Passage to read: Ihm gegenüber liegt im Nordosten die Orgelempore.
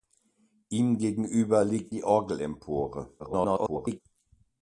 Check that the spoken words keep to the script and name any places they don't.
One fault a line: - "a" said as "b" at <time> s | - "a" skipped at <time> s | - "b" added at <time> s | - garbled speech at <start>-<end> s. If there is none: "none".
- "im Nordosten" skipped at 1.9 s
- garbled speech at 3.2-4.0 s